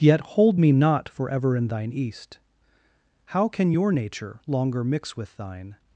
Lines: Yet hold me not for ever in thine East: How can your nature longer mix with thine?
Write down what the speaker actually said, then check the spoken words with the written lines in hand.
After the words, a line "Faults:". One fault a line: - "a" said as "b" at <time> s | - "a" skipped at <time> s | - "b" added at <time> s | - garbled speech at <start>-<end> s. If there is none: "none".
Yet hold me not for ever in thine East: How can your nature longer mix with thine?
Faults:
none